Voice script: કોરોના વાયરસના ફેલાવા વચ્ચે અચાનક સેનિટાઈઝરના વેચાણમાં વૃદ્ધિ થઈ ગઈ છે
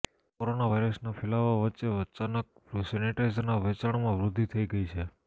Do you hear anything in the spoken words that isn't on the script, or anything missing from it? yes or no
no